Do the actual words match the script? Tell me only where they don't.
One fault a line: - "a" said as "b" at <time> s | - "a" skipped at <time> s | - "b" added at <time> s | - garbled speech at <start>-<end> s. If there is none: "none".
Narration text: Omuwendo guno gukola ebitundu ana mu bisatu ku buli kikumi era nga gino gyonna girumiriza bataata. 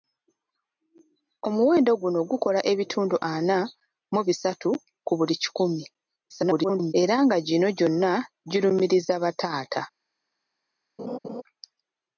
- garbled speech at 6.3-6.9 s